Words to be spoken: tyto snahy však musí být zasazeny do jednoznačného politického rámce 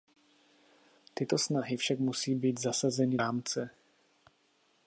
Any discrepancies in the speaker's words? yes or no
yes